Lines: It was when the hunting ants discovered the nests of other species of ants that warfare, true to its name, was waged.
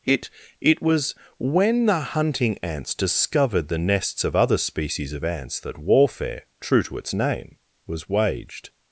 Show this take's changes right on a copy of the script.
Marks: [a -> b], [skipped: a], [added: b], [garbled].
It [added: it] was when the hunting ants discovered the nests of other species of ants that warfare, true to its name, was waged.